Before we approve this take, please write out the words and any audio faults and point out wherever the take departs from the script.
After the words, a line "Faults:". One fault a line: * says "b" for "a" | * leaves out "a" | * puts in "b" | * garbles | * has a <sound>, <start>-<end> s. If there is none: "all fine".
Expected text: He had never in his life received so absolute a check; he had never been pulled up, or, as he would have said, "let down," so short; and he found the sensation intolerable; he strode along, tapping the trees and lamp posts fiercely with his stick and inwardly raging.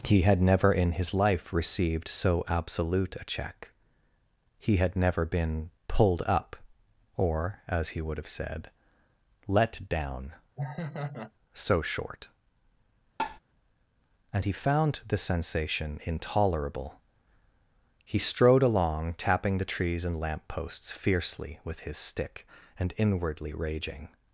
He had never in his life received so absolute a check; he had never been pulled up, or, as he would have said, "let down," so short; and he found the sensation intolerable; he strode along, tapping the trees and lamp posts fiercely with his stick and inwardly raging.
Faults:
* has a laugh, 10.6-11.3 s
* has a tap, 13.2-13.4 s